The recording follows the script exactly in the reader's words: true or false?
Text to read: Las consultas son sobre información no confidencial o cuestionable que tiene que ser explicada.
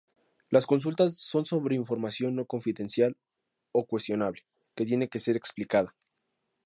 true